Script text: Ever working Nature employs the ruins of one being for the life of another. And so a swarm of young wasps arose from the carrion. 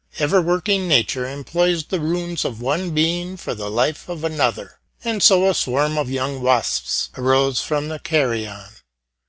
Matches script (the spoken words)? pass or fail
pass